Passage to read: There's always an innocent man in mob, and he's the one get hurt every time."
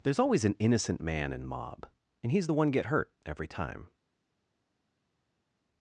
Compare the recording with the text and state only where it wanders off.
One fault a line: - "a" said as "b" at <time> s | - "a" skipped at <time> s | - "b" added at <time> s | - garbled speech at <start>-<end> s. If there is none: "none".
none